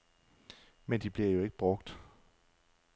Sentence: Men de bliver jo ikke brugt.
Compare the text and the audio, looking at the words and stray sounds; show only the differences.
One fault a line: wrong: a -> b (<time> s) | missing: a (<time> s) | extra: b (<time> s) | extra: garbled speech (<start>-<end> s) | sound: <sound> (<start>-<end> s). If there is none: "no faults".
no faults